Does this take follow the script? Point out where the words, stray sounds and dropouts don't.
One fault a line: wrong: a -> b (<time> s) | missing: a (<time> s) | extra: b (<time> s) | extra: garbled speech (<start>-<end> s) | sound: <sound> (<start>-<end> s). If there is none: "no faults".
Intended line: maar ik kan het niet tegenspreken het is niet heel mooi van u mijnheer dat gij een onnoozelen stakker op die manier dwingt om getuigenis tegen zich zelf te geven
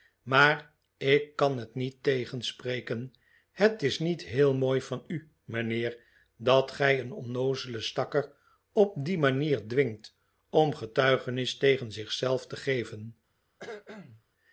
sound: cough (13.6-14.2 s)